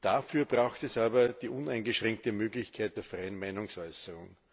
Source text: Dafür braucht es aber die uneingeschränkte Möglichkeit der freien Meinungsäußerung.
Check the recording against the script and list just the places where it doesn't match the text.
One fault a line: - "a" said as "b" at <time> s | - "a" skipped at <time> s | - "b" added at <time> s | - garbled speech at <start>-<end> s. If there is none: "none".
none